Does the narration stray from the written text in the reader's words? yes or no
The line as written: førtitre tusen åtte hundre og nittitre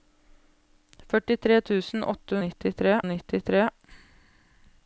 yes